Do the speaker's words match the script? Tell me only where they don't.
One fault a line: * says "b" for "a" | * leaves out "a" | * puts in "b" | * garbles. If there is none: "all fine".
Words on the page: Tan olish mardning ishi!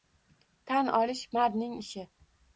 all fine